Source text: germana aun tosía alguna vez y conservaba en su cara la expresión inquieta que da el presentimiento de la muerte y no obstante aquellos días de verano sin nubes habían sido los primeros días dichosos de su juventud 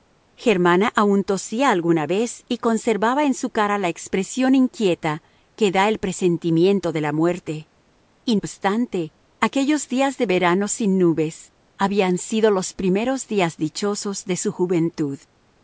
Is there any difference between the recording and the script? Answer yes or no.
yes